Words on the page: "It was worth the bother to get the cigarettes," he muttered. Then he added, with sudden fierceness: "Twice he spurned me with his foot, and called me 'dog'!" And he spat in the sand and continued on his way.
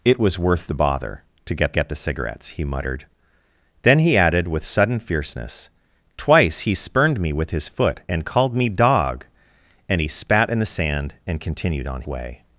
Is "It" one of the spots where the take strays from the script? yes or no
no